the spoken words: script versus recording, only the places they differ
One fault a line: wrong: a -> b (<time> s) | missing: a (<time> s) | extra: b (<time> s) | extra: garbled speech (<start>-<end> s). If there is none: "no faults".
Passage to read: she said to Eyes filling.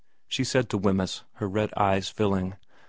extra: Wemyss her red (0.8 s)